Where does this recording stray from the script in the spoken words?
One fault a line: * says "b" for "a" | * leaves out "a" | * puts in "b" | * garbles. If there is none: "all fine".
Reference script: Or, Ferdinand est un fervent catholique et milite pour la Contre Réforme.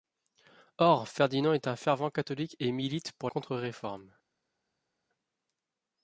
* leaves out "la"